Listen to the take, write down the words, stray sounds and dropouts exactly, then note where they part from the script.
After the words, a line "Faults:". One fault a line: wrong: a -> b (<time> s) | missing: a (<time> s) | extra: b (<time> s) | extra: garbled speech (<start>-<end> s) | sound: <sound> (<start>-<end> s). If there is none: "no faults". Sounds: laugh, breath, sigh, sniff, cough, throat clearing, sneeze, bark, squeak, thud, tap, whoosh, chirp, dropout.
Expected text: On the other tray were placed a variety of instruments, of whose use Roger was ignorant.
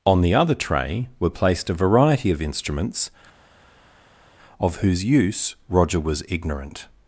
On the other tray were placed a variety of instruments, of whose use Roger was ignorant.
Faults:
no faults